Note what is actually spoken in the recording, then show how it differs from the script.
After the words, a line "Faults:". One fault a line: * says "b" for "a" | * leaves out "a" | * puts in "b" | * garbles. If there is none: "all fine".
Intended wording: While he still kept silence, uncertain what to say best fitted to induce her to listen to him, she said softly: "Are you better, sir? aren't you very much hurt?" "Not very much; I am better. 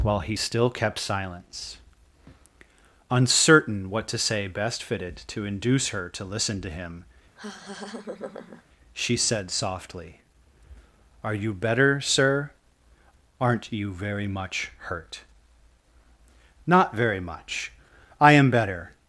While he still kept silence, uncertain what to say best fitted to induce her to listen to him, she said softly: "Are you better, sir? aren't you very much hurt?" "Not very much; I am better.
Faults:
all fine